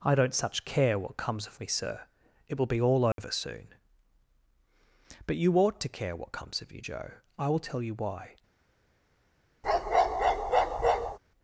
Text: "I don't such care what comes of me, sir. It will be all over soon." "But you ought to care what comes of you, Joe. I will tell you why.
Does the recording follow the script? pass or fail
pass